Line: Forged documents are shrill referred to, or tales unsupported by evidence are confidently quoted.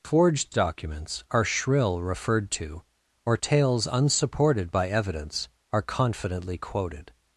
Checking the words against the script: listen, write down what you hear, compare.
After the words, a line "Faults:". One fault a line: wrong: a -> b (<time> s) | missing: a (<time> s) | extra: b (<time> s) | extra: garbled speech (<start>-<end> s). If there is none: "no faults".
Forged documents are shrill referred to, or tales unsupported by evidence are confidently quoted.
Faults:
no faults